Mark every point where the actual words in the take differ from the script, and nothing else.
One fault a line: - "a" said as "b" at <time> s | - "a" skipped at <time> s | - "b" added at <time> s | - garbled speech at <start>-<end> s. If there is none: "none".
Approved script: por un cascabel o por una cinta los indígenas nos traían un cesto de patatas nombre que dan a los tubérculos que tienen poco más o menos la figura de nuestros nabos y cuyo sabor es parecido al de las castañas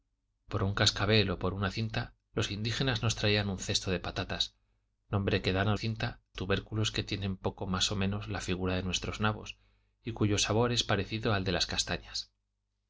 - "los" said as "cinta" at 5.7 s